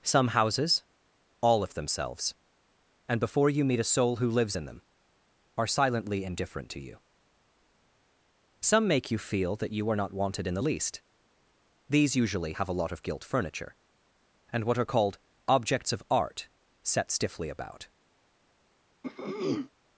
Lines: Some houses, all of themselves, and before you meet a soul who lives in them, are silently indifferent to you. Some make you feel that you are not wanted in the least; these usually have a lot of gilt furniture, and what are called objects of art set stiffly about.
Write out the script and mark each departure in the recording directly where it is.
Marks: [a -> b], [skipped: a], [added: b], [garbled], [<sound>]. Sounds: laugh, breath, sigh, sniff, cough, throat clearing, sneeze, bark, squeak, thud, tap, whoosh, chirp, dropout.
Some houses, all of themselves, and before you meet a soul who lives in them, are silently indifferent to you. Some make you feel that you are not wanted in the least; these usually have a lot of gilt furniture, and what are called objects of art set stiffly about. [throat clearing]